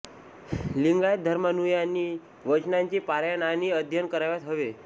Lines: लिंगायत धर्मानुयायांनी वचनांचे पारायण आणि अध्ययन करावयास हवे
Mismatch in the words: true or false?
false